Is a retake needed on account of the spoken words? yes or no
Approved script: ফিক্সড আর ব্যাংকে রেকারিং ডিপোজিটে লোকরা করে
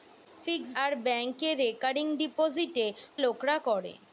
no